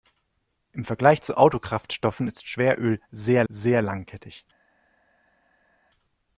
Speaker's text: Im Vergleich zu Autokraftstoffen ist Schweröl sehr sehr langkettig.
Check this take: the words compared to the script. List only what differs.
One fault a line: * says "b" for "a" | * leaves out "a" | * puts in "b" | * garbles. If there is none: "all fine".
all fine